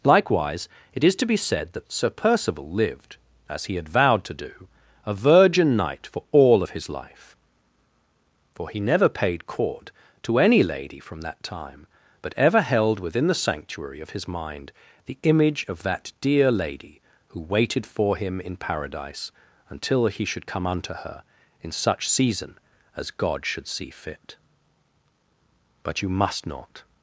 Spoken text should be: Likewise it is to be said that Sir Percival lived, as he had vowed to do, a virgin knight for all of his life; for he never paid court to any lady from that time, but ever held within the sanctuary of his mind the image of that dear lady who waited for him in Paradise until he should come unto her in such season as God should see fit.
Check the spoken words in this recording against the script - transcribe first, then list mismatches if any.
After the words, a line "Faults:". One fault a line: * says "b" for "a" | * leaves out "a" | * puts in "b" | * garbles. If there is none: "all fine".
Likewise it is to be said that Sir Percival lived, as he had vowed to do, a virgin knight for all of his life; for he never paid court to any lady from that time, but ever held within the sanctuary of his mind the image of that dear lady who waited for him in Paradise until he should come unto her in such season as God should see fit. But you must not
Faults:
* puts in "But you must not"